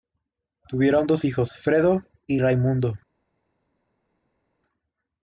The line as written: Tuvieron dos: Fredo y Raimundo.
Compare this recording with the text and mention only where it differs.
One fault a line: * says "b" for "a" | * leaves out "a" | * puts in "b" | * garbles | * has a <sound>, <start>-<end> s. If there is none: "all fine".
* puts in "hijos"